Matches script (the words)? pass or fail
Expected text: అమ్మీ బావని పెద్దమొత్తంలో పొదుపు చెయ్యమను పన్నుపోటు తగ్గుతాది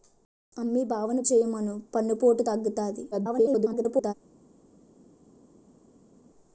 fail